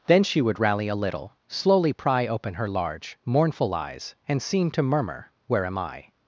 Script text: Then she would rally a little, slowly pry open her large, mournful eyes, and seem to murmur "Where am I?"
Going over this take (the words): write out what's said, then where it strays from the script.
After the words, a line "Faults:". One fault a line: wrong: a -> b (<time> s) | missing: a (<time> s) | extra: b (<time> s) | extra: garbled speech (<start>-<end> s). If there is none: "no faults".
Then she would rally a little, slowly pry open her large, mournful eyes, and seem to murmur "Where am I?"
Faults:
no faults